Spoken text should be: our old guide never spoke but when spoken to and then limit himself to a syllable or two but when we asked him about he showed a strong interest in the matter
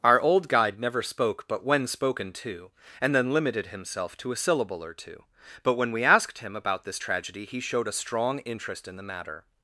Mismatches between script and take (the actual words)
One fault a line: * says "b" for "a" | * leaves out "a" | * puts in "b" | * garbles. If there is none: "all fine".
* says "limited" for "limit"
* puts in "this tragedy"